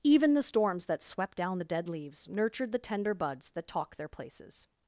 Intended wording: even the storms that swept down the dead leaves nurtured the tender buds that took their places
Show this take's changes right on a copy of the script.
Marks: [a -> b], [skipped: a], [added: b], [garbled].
even the storms that swept down the dead leaves nurtured the tender buds that [took -> talk] their places